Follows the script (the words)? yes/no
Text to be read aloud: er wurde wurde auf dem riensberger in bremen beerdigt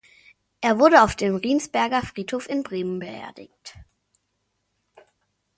no